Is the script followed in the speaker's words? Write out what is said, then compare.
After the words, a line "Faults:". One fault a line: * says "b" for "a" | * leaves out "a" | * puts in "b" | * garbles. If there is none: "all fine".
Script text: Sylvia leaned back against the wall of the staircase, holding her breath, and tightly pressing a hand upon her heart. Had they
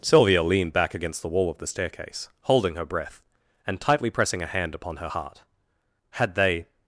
Sylvia leaned back against the wall of the staircase, holding her breath, and tightly pressing a hand upon her heart. Had they
Faults:
all fine